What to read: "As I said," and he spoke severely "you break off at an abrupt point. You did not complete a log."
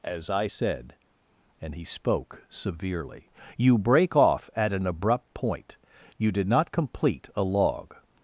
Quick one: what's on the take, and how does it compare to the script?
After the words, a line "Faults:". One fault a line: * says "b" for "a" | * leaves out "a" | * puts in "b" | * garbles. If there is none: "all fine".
"As I said," and he spoke severely "you break off at an abrupt point. You did not complete a log."
Faults:
all fine